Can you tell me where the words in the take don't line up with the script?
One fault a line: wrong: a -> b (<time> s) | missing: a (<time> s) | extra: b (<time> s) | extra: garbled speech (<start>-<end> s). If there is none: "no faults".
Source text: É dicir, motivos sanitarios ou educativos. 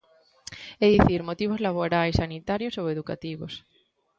extra: laborais (1.7 s)